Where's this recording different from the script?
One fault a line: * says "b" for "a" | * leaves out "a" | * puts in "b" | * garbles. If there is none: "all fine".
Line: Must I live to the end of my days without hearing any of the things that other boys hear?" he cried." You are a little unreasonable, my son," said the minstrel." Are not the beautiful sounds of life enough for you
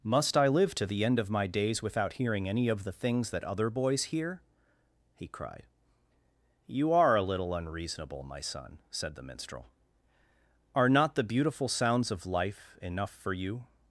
all fine